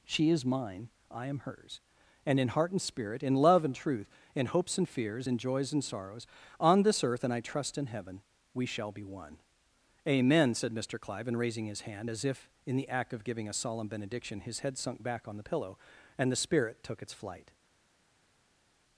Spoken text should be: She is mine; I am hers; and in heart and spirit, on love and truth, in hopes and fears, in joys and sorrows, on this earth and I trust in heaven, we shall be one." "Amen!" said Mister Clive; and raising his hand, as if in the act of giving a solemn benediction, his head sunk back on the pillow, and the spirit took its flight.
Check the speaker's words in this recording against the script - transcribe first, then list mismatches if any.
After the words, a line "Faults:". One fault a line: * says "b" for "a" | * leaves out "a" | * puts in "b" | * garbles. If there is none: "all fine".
She is mine; I am hers; and in heart and spirit, in love and truth, in hopes and fears, in joys and sorrows, on this earth and I trust in heaven, we shall be one." "Amen!" said Mister Clive; and raising his hand, as if in the act of giving a solemn benediction, his head sunk back on the pillow, and the spirit took its flight.
Faults:
* says "in" for "on"